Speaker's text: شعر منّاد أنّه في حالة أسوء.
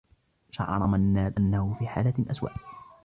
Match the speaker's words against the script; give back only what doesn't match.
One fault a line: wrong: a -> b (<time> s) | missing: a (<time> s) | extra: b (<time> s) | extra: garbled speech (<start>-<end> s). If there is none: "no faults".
no faults